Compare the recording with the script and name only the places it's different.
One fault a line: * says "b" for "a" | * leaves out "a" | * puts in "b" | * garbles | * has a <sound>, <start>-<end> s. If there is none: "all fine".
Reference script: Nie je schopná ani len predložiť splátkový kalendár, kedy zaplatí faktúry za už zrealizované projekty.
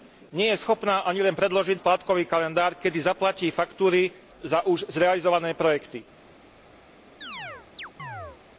* has a chirp, 7.2-8.4 s